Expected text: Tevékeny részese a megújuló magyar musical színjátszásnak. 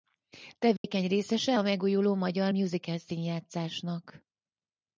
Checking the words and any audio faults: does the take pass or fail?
fail